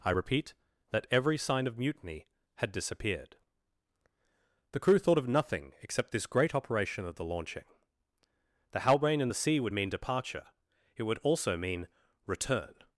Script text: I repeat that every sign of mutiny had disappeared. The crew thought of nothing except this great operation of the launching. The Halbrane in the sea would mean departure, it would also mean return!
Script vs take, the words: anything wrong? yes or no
no